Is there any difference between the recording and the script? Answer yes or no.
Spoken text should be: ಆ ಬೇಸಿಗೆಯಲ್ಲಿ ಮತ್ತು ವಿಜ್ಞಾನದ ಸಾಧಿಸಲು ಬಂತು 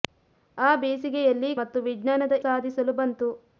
no